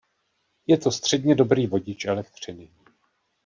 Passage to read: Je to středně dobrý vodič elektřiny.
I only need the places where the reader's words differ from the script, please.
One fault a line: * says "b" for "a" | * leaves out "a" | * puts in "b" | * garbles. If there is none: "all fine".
all fine